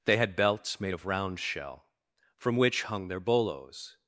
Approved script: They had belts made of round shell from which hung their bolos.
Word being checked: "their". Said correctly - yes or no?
yes